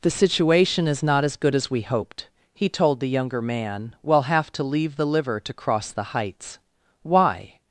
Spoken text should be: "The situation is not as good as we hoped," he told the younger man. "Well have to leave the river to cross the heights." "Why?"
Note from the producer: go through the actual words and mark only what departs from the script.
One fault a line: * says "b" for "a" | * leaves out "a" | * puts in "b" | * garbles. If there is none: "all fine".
* says "liver" for "river"